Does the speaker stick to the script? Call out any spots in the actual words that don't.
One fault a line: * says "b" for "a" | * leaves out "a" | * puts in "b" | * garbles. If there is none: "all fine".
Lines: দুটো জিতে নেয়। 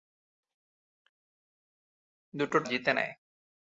all fine